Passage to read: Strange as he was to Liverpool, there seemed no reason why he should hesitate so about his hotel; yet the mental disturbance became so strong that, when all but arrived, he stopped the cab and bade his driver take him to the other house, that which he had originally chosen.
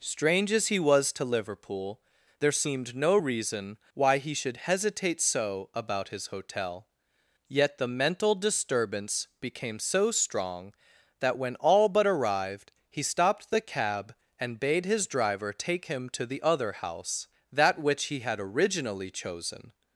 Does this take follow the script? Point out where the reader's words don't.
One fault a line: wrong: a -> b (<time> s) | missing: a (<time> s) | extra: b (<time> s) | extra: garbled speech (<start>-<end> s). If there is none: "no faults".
no faults